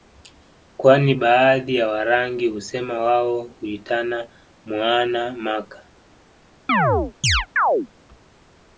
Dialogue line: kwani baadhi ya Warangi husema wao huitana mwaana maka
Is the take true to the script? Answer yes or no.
yes